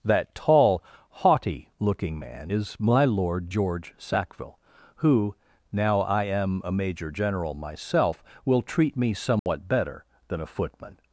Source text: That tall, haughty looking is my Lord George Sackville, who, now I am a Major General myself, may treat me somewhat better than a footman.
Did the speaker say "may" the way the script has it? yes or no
no